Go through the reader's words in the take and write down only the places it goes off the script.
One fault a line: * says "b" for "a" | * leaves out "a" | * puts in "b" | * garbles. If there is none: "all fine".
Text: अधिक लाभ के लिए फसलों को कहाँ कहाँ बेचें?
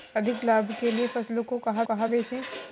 all fine